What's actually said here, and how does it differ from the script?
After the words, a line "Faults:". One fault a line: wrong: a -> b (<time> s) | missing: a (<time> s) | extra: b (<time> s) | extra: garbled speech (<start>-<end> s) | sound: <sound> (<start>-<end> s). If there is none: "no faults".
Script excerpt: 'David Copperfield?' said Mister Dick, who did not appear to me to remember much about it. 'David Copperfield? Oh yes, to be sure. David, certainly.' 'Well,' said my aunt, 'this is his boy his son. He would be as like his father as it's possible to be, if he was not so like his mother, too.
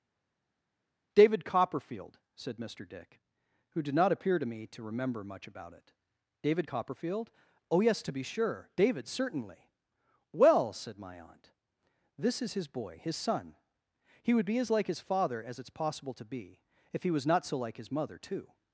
'David Copperfield?' said Mister Dick, who did not appear to me to remember much about it. 'David Copperfield? Oh yes, to be sure. David, certainly.' 'Well,' said my aunt, 'this is his boy his son. He would be as like his father as it's possible to be, if he was not so like his mother, too.
Faults:
no faults